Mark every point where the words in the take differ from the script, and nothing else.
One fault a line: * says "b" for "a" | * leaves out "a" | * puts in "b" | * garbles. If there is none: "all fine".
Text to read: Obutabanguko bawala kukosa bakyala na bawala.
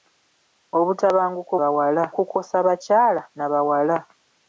all fine